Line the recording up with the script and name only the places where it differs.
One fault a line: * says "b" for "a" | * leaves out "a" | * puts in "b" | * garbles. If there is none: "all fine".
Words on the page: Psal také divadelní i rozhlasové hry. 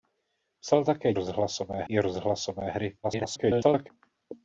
* says "rozhlasové" for "divadelní"
* garbles